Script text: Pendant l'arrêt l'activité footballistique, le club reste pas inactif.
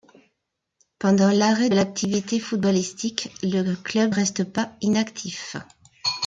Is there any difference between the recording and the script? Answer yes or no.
no